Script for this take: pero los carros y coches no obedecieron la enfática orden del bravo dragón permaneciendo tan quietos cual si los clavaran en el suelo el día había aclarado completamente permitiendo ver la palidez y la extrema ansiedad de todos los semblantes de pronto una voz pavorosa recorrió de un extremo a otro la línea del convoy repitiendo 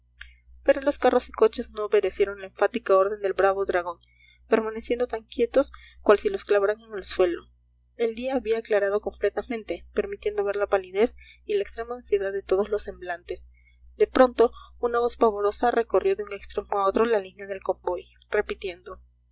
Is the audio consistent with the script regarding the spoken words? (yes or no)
yes